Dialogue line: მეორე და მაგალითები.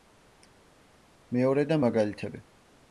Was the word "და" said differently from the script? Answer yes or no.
no